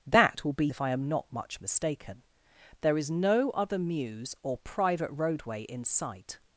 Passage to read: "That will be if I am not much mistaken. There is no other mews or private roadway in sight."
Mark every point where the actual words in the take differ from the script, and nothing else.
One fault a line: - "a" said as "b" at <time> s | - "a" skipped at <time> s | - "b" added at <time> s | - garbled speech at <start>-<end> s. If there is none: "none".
none